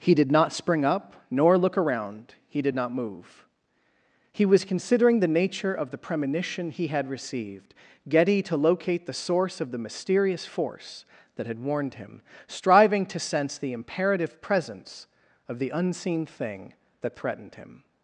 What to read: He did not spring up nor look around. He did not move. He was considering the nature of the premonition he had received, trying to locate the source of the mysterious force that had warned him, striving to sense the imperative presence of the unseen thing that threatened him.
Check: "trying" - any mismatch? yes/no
yes